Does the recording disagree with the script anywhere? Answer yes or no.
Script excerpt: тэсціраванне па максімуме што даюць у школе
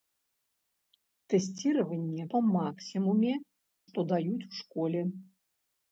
no